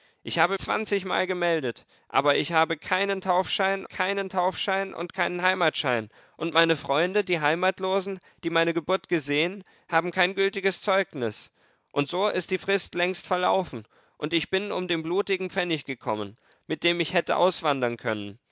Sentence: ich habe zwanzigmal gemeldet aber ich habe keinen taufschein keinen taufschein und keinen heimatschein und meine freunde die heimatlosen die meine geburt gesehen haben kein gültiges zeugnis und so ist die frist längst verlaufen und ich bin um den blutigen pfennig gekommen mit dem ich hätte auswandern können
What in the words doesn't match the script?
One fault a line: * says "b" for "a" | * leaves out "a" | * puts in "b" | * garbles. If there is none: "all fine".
all fine